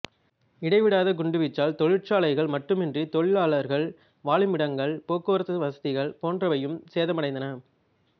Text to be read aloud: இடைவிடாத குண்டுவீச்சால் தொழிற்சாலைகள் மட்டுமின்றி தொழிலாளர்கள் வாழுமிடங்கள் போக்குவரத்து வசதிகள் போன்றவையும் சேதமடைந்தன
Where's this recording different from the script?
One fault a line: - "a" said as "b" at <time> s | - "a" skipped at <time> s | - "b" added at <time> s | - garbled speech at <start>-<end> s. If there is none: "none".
none